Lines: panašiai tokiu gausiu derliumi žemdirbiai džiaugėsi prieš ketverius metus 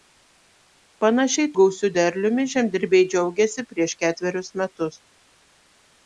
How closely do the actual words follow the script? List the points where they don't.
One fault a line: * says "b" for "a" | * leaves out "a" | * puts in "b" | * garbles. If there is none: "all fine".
* leaves out "tokiu"